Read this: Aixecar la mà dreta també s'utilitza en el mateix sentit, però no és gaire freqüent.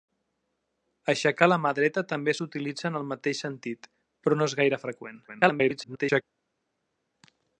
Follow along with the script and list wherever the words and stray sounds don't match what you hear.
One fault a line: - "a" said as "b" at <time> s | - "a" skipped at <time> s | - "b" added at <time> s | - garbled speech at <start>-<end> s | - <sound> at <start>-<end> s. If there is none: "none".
- garbled speech at 5.3-6.2 s